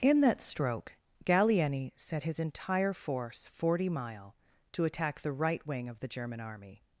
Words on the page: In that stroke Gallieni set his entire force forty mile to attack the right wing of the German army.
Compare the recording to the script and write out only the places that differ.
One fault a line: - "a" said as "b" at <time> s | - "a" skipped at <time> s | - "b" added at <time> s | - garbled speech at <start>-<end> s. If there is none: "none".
none